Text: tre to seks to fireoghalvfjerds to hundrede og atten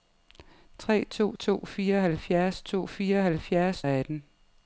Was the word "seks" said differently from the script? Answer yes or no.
yes